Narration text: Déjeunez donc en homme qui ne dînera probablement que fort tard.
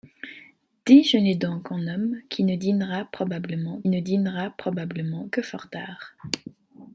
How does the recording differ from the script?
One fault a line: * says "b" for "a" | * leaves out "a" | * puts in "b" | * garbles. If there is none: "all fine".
* puts in "ne dînera probablement"